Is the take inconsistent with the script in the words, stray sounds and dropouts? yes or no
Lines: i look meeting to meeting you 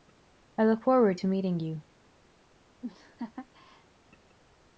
yes